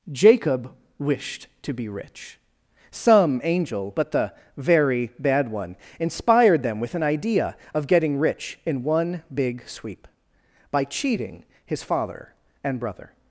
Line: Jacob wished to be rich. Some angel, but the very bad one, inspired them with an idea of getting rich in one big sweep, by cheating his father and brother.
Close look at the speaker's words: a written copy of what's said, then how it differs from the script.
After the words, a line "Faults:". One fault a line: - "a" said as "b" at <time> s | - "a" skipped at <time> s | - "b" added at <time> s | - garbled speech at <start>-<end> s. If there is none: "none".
Jacob wished to be rich. Some angel, but the very bad one, inspired them with an idea of getting rich in one big sweep, by cheating his father and brother.
Faults:
none